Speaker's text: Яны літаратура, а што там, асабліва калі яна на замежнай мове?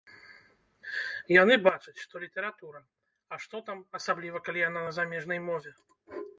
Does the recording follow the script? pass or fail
fail